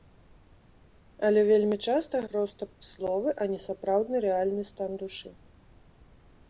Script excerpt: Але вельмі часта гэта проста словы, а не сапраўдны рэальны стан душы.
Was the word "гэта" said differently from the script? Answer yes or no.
yes